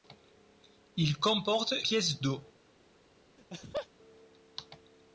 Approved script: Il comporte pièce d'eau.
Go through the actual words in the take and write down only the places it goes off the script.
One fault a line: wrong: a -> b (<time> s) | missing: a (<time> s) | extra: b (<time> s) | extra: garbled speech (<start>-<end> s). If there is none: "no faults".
no faults